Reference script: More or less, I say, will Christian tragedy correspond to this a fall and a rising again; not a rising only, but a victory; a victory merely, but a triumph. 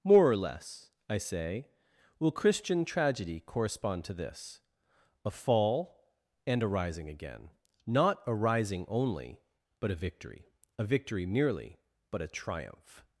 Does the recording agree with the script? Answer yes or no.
yes